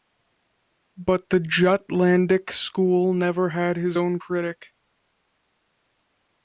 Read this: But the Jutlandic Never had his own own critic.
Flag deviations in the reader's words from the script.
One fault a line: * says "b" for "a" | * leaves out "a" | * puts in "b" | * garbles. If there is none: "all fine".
* puts in "School"
* leaves out "own"